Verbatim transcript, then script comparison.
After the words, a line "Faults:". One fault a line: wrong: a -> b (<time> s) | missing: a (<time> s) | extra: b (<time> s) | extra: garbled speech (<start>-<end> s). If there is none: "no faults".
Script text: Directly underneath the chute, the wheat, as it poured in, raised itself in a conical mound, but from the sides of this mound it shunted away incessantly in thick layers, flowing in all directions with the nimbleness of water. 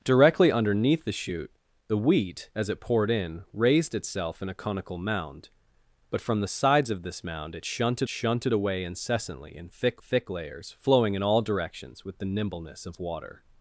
Directly underneath the chute, the wheat, as it poured in, raised itself in a conical mound, but from the sides of this mound it shunted shunted away incessantly in thick thick layers, flowing in all directions with the nimbleness of water.
Faults:
extra: shunted (8.1 s)
extra: thick (10.0 s)